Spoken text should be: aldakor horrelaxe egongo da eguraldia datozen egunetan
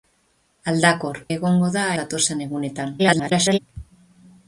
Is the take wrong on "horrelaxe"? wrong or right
wrong